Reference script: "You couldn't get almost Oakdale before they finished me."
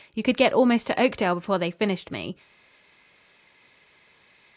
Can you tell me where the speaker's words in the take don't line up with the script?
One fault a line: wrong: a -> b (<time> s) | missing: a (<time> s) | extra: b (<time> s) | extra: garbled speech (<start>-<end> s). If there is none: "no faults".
wrong: couldn't -> could (0.2 s)
extra: to (0.9 s)